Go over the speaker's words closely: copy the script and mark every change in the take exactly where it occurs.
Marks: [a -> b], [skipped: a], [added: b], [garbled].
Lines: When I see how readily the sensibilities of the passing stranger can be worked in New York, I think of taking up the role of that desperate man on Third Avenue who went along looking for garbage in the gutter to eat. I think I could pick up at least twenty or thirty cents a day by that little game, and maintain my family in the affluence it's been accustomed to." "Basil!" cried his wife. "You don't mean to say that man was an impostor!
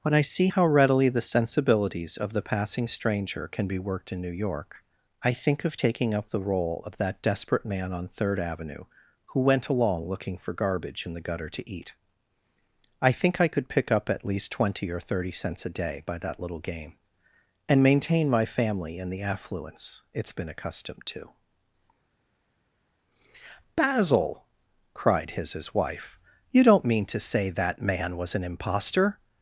When I see how readily the sensibilities of the passing stranger can be worked in New York, I think of taking up the role of that desperate man on Third Avenue who went along looking for garbage in the gutter to eat. I think I could pick up at least twenty or thirty cents a day by that little game, and maintain my family in the affluence it's been accustomed to." "Basil!" cried his [added: his] wife. "You don't mean to say that man was an impostor!